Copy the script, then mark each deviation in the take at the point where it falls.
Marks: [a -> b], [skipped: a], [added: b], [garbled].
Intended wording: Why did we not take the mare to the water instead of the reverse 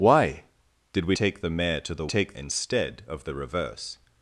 Why did we [skipped: not] take the mare to the [water -> take] instead of the reverse